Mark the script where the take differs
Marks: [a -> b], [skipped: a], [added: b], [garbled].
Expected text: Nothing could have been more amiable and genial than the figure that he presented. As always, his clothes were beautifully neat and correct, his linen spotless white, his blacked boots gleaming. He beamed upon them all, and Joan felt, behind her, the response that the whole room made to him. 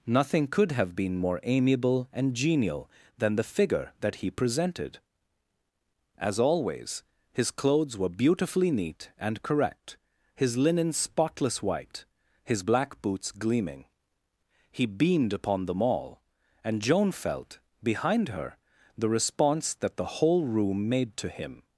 Nothing could have been more amiable and genial than the figure that he presented. As always, his clothes were beautifully neat and correct, his linen spotless white, his [blacked -> black] boots gleaming. He beamed upon them all, and Joan felt, behind her, the response that the whole room made to him.